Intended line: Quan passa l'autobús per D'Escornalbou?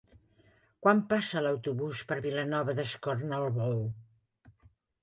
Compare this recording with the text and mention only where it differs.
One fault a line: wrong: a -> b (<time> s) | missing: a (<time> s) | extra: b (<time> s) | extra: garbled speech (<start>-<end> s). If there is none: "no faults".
extra: Vilanova (2.3 s)